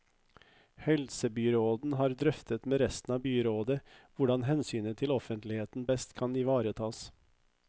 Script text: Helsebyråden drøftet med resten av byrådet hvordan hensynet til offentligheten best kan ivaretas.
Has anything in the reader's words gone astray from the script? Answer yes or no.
yes